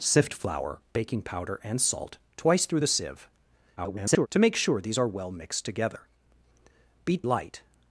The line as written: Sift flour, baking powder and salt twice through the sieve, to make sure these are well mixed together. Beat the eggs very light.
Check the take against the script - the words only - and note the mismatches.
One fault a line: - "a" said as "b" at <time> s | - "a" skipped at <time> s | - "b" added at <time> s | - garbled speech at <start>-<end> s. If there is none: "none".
- garbled speech at 3.8-4.3 s
- "the eggs very" skipped at 7.3 s